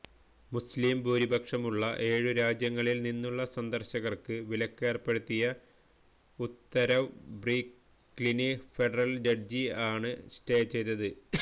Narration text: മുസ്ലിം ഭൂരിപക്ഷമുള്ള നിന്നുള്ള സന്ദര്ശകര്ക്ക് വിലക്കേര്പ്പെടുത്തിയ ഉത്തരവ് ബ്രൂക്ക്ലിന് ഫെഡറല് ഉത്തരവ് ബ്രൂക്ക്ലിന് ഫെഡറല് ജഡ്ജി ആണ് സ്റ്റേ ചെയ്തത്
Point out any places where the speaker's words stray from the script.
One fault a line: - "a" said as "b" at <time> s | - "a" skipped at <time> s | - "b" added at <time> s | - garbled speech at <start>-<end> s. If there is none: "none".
- "ഏഴു രാജ്യങ്ങളില്" added at 2.1 s
- "ഉത്തരവ് ബ്രൂക്ക്ലിന് ഫെഡറല്" skipped at 9.2 s